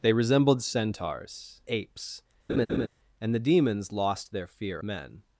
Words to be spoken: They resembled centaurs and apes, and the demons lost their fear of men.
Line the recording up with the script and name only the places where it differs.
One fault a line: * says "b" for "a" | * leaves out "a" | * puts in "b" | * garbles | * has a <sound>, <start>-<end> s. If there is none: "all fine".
* leaves out "and"
* has a laugh, 2.5-2.9 s
* leaves out "of"